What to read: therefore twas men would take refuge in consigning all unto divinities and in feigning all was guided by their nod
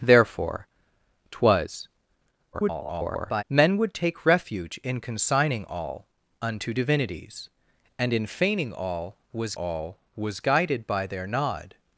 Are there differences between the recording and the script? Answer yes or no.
yes